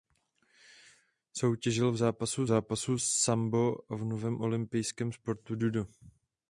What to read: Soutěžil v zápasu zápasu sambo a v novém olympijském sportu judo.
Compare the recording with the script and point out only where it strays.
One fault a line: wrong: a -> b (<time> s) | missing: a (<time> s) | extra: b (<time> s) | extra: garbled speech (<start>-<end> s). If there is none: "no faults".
no faults